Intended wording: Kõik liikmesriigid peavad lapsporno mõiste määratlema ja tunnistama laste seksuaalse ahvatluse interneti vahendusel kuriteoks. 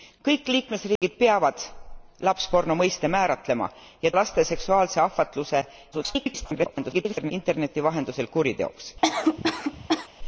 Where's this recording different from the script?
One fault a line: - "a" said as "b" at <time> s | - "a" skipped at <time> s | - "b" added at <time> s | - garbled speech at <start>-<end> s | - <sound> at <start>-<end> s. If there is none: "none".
- dropout at 1.0-1.0 s
- "tunnistama" skipped at 4.1 s
- garbled speech at 5.9-7.3 s
- cough at 9.0-10.1 s